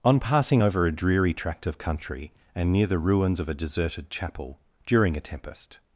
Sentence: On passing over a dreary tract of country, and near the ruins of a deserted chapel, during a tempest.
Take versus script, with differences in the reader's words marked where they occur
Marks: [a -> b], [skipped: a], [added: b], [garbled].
On passing over a dreary tract of country, and near the ruins of a deserted chapel, during a tempest.